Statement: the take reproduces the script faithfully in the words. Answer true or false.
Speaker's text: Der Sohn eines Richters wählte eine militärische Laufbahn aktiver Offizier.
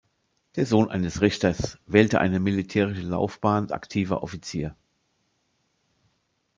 true